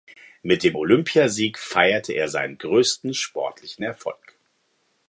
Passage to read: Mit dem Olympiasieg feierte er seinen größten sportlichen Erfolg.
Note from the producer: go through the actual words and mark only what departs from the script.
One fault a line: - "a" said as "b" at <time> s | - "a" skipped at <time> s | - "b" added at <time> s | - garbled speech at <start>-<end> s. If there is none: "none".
none